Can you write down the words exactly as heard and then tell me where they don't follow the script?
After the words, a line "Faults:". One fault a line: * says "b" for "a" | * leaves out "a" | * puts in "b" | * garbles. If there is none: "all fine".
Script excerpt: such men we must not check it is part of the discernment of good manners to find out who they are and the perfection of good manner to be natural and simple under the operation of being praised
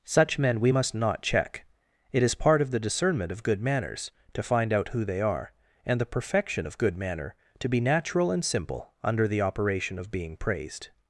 such men we must not check it is part of the discernment of good manners to find out who they are and the perfection of good manner to be natural and simple under the operation of being praised
Faults:
all fine